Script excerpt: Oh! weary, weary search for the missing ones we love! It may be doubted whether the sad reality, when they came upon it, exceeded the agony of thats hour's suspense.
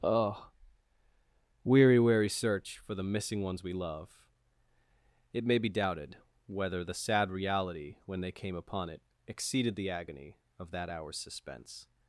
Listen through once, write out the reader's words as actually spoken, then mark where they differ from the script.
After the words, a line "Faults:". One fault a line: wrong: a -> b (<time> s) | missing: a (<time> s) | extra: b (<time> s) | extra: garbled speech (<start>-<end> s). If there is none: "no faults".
Oh! weary, weary search for the missing ones we love! It may be doubted whether the sad reality, when they came upon it, exceeded the agony of that hour's suspense.
Faults:
wrong: thats -> that (10.7 s)